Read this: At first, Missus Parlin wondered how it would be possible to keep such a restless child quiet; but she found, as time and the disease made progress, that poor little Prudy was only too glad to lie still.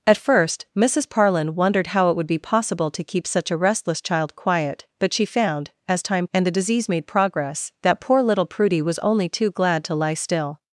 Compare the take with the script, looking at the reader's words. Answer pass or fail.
pass